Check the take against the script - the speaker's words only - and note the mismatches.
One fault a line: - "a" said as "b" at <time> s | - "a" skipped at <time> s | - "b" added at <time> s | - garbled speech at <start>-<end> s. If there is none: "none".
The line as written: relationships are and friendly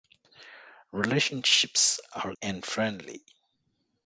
none